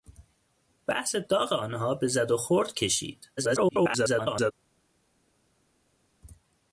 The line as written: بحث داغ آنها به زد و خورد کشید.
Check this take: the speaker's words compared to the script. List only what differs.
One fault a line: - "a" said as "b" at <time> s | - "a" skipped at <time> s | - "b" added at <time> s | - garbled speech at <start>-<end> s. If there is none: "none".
- garbled speech at 3.4-4.5 s